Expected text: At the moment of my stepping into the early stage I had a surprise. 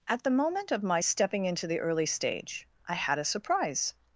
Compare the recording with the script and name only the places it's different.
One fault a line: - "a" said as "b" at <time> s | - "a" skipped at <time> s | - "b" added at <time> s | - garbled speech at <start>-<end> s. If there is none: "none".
none